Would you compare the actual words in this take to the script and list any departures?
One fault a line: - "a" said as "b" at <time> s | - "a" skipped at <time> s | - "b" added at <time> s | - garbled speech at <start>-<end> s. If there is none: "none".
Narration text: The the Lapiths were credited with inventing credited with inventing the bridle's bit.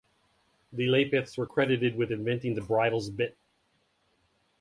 - "the" skipped at 0.9 s
- "credited with inventing" skipped at 2.5 s